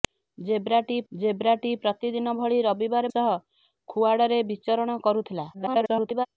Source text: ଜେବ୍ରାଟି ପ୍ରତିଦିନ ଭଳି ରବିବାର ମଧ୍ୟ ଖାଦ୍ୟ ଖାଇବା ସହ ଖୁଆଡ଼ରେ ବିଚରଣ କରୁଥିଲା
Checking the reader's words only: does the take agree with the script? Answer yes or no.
no